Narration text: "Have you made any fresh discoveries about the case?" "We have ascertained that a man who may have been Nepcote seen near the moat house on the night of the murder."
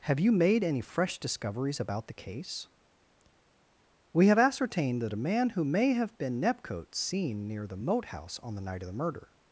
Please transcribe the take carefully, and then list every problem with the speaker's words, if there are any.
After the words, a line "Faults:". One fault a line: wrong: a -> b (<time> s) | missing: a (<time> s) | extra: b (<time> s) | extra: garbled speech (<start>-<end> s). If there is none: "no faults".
"Have you made any fresh discoveries about the case?" "We have ascertained that a man who may have been Nepcote seen near the moat house on the night of the murder."
Faults:
no faults